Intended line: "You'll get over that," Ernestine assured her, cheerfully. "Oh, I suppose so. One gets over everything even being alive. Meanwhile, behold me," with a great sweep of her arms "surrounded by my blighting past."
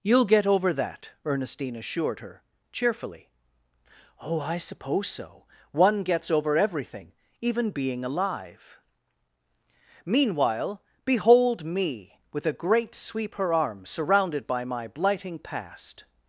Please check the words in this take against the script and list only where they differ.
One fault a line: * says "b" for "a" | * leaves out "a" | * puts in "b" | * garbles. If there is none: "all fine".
* leaves out "of"